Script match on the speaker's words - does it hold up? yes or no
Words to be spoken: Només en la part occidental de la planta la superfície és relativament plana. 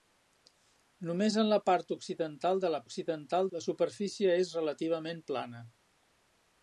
no